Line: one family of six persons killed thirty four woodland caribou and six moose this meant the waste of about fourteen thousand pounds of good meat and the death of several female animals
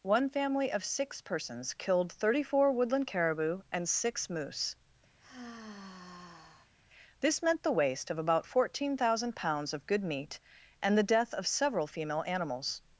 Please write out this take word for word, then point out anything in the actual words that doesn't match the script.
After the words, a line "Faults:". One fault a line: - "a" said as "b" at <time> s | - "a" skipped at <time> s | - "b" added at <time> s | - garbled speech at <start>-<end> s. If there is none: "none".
one family of six persons killed thirty four woodland caribou and six moose this meant the waste of about fourteen thousand pounds of good meat and the death of several female animals
Faults:
none